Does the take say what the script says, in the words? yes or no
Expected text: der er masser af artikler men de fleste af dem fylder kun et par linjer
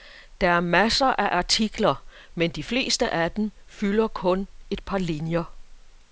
yes